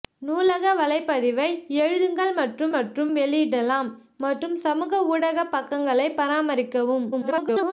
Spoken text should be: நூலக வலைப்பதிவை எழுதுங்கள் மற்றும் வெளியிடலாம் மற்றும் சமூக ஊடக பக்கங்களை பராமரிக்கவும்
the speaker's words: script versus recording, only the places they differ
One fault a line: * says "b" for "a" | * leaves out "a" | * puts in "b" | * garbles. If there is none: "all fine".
* puts in "மற்றும்"
* garbles